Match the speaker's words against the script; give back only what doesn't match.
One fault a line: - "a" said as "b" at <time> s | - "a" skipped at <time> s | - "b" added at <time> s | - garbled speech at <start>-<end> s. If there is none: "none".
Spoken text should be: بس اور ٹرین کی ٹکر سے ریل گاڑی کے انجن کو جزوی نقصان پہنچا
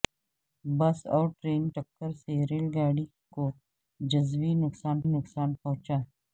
- "کی" skipped at 1.7 s
- "کے انجن" skipped at 3.0 s
- "نقصان" added at 5.1 s